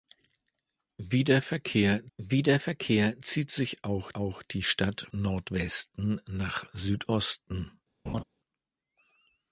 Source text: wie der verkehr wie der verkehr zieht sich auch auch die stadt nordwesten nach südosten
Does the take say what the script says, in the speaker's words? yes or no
yes